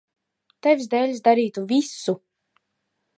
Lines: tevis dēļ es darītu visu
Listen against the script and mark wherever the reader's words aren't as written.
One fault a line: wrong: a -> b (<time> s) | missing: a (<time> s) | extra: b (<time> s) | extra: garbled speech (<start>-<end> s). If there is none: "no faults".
no faults